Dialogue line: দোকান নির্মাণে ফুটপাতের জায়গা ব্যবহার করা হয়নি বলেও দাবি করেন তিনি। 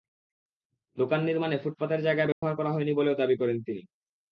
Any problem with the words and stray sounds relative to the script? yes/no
yes